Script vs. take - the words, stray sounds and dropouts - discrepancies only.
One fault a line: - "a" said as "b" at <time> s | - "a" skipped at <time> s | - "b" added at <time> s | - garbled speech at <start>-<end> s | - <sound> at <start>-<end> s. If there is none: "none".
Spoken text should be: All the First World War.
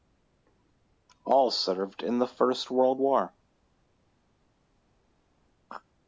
- "served in" added at 1.5 s